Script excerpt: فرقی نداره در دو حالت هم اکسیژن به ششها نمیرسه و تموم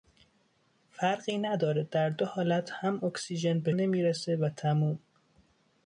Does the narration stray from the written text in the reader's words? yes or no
yes